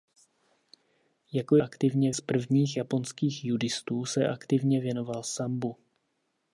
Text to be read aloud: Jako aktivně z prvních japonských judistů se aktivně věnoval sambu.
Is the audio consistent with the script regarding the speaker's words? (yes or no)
yes